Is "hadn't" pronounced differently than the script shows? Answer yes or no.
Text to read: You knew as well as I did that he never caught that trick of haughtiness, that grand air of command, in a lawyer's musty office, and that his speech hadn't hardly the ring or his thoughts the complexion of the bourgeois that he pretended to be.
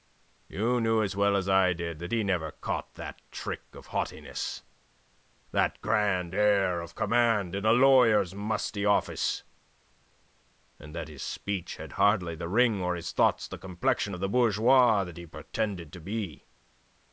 yes